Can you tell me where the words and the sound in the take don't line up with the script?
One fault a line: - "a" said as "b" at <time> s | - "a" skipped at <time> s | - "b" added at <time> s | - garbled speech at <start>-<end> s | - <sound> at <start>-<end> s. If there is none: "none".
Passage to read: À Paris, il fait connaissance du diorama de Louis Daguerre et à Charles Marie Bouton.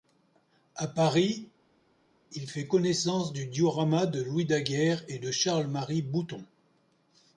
- "à" said as "de" at 5.2 s